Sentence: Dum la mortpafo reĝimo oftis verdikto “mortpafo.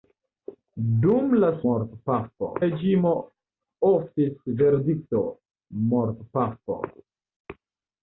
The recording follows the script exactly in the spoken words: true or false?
true